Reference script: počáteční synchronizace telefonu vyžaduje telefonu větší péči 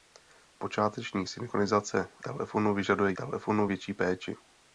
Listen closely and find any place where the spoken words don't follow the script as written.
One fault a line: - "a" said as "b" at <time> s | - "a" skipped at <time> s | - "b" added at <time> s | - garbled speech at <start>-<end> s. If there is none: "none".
none